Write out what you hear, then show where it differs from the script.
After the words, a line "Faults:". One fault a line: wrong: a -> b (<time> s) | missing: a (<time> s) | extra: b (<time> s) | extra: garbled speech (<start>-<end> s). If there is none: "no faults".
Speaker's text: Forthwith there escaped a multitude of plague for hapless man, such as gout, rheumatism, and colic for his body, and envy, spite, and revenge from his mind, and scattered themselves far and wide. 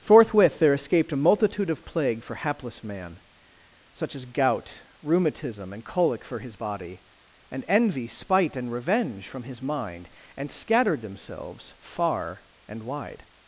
Forthwith there escaped a multitude of plague for hapless man, such as gout, rheumatism, and colic for his body, and envy, spite, and revenge from his mind, and scattered themselves far and wide.
Faults:
no faults